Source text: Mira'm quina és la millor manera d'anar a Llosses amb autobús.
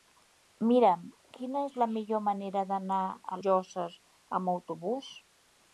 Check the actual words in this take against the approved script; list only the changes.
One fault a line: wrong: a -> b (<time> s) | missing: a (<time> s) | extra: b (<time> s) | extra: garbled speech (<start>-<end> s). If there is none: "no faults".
no faults